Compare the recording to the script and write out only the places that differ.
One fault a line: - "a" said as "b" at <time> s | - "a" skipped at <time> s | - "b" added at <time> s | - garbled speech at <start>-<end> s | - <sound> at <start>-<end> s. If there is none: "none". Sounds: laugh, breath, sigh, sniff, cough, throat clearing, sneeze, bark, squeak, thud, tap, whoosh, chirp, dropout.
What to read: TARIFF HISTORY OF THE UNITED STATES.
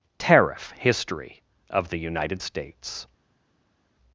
none